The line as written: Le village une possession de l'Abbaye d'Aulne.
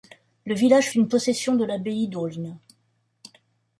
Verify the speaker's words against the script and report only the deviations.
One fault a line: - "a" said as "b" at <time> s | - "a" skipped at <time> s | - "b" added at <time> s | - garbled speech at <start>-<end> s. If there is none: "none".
none